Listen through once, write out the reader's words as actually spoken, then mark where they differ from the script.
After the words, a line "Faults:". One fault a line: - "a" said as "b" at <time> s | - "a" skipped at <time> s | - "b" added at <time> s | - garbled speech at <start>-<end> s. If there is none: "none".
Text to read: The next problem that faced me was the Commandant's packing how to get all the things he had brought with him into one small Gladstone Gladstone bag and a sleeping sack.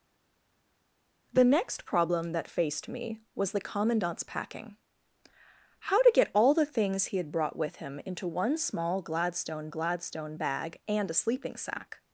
The next problem that faced me was the Commandant's packing how to get all the things he had brought with him into one small Gladstone Gladstone bag and a sleeping sack.
Faults:
none